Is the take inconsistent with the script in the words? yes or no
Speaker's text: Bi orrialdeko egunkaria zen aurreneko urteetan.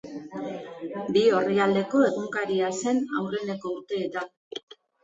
no